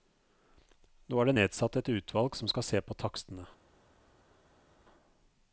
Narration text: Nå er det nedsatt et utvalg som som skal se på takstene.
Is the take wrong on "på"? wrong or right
right